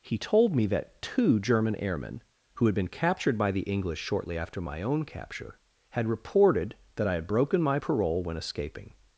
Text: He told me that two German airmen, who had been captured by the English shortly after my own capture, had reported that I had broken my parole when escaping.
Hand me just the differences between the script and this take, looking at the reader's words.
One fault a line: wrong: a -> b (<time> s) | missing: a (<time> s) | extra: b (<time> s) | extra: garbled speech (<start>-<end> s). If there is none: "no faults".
no faults